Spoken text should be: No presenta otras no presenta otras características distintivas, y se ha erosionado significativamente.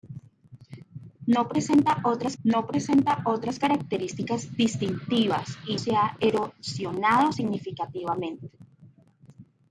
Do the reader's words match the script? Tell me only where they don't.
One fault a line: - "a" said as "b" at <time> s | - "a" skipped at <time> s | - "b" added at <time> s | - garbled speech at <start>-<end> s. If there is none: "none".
none